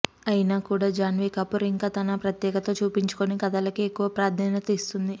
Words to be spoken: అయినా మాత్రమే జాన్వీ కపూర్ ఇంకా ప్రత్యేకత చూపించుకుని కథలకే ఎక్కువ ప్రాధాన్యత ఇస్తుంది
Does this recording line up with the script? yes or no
no